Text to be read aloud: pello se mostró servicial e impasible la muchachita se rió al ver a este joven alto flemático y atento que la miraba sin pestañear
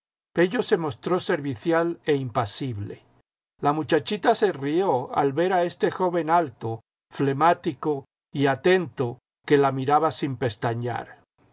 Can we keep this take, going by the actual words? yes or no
yes